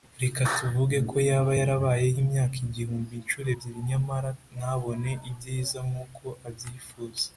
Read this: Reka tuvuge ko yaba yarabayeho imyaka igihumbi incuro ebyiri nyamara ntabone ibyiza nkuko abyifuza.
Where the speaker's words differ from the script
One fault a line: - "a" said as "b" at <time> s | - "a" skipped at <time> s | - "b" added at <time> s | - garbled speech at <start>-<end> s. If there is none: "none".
none